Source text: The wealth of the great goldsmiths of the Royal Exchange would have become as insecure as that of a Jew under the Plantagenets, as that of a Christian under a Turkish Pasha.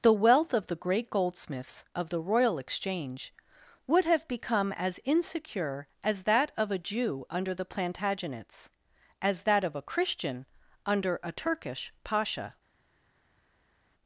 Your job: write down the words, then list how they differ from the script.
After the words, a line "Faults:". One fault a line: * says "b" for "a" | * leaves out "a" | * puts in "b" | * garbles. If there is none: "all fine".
The wealth of the great goldsmiths of the Royal Exchange would have become as insecure as that of a Jew under the Plantagenets, as that of a Christian under a Turkish Pasha.
Faults:
all fine